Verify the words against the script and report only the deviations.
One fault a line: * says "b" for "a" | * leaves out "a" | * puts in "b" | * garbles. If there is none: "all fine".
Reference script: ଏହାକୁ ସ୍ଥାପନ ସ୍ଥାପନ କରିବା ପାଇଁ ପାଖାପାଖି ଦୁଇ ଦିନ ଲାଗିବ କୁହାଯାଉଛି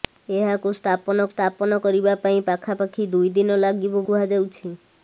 all fine